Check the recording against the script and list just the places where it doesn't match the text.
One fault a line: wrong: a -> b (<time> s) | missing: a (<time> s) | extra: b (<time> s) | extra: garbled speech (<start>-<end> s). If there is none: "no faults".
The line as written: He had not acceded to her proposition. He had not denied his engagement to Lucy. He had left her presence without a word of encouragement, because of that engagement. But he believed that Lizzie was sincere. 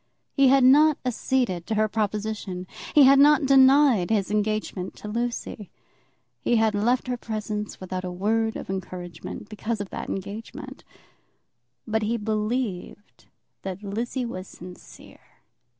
no faults